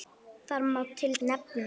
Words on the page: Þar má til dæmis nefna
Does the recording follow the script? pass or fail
fail